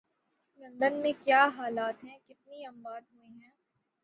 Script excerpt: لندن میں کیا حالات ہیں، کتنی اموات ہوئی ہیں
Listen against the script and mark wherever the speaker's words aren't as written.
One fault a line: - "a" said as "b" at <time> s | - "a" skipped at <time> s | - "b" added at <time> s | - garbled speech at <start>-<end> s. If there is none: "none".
none